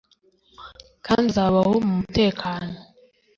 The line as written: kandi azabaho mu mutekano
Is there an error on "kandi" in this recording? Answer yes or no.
no